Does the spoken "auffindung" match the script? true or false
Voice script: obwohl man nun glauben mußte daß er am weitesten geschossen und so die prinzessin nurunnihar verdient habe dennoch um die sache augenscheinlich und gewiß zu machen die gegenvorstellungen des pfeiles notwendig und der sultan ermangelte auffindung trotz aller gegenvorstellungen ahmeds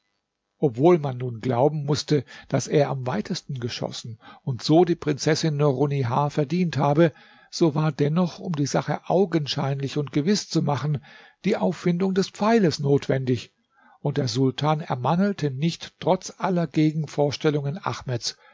false